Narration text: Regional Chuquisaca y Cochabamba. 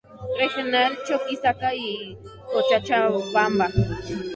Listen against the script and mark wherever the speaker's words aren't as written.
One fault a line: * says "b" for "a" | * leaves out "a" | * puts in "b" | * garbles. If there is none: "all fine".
all fine